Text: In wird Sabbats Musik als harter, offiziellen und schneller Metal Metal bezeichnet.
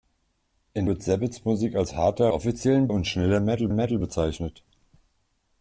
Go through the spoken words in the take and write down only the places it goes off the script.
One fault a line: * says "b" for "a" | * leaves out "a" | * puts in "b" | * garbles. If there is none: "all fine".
all fine